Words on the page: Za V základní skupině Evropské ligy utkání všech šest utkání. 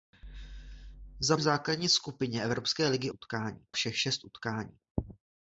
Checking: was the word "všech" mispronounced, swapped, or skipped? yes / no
no